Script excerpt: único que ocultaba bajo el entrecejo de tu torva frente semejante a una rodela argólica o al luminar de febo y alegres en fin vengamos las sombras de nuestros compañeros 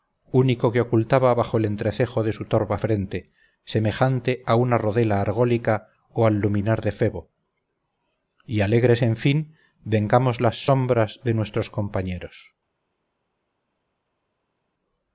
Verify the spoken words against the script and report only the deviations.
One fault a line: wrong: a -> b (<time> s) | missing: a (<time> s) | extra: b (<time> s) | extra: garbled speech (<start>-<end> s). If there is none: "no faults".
wrong: tu -> su (2.3 s)